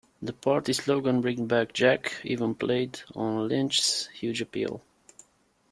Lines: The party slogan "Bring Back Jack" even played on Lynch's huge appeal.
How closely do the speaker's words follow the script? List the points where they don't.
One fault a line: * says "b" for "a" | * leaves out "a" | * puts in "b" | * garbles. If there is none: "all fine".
all fine